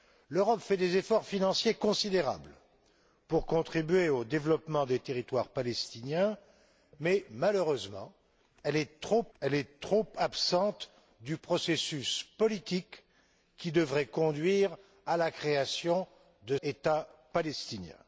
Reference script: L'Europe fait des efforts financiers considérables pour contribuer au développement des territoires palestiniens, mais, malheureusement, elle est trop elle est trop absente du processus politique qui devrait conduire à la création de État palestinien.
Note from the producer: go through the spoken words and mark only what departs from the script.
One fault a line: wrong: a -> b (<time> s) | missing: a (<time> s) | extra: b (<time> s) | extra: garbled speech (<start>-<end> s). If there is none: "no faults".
no faults